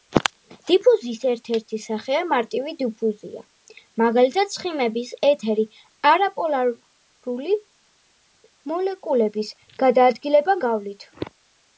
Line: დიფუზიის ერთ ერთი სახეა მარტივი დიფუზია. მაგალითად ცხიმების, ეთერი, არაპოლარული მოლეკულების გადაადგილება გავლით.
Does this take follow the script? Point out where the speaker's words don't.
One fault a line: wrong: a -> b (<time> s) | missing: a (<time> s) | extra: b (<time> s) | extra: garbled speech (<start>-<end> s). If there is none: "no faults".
no faults